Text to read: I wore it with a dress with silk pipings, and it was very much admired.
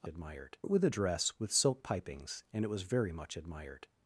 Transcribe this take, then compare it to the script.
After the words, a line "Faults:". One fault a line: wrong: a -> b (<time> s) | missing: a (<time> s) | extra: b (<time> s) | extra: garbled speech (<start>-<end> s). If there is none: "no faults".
I admired it with a dress with silk pipings, and it was very much admired.
Faults:
wrong: wore -> admired (0.1 s)